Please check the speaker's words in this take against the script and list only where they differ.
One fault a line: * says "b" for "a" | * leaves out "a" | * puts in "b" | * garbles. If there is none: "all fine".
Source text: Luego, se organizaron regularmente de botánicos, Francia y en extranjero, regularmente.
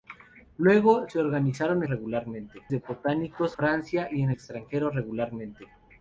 all fine